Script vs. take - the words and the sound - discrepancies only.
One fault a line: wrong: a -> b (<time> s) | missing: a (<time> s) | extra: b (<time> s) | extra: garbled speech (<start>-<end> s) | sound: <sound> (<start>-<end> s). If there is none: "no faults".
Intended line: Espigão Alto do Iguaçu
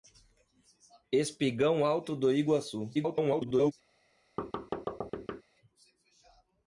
extra: garbled speech (2.9-3.7 s)
sound: thud (4.4-5.4 s)